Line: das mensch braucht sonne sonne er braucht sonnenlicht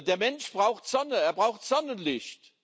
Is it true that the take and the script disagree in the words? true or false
true